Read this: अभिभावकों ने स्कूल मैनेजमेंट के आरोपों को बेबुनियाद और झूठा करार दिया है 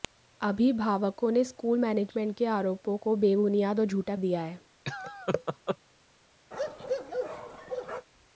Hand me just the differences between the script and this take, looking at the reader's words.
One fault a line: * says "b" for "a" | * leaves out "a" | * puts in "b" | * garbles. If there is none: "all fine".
* leaves out "करार"